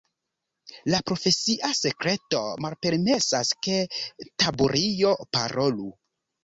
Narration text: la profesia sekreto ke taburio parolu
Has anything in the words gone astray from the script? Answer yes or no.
yes